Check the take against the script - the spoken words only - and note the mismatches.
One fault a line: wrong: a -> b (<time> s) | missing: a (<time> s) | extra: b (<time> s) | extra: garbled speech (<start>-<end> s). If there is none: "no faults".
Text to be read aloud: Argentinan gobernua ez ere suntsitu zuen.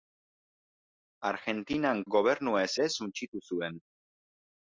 no faults